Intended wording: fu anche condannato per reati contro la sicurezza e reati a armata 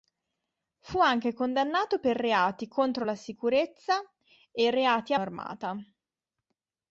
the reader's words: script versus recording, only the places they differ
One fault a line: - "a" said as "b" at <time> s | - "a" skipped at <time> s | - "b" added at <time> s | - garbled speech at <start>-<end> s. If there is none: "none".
none